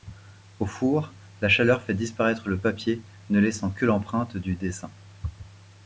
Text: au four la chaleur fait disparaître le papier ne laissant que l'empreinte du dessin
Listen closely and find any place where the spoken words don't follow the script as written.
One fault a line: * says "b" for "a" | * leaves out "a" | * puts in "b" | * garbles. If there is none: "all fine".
all fine